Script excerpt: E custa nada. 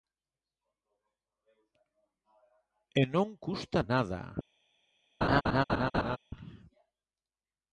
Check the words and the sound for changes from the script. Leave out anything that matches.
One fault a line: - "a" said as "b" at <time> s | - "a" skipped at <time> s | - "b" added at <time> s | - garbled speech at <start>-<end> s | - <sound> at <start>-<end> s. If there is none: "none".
- "non" added at 3.0 s
- laugh at 5.2-6.2 s